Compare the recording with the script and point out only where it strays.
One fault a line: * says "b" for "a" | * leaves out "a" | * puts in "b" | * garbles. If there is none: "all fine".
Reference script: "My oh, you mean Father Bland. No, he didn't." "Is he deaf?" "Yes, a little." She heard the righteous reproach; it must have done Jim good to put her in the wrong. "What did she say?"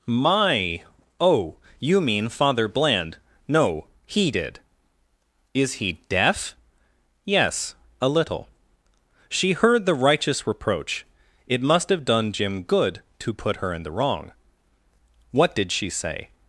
* says "did" for "didn't"